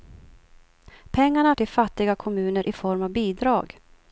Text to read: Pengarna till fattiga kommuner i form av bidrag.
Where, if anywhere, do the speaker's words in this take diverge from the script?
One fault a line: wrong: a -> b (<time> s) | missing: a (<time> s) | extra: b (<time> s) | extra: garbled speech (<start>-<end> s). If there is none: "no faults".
no faults